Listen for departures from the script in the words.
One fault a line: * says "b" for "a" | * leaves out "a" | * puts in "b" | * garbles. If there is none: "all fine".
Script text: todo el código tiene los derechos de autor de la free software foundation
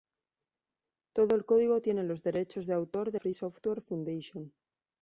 * leaves out "la"